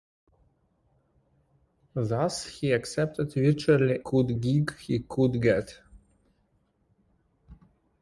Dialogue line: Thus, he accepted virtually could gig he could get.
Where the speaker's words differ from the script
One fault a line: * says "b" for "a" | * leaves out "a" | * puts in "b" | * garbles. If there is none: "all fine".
all fine